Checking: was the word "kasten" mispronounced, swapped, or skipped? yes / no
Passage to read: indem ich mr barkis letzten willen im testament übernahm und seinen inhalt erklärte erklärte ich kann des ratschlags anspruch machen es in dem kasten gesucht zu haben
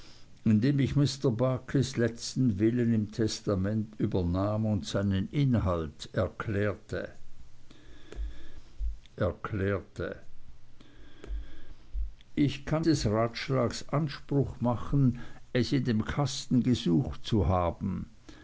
no